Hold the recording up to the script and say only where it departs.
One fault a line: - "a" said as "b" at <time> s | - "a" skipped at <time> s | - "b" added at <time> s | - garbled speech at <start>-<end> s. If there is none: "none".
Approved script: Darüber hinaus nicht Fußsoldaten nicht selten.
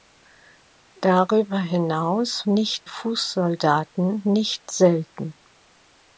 none